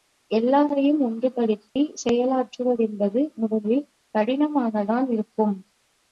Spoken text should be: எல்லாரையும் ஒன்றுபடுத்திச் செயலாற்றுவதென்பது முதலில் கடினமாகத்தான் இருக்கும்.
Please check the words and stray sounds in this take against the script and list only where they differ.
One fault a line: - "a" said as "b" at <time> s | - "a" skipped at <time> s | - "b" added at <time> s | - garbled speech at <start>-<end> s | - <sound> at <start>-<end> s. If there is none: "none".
- dropout at 1.7-1.8 s